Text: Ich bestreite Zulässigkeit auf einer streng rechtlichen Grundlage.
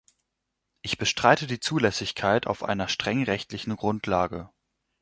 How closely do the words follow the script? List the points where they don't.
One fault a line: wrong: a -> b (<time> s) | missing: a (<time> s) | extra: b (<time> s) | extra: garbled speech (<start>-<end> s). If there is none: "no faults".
extra: die (1.4 s)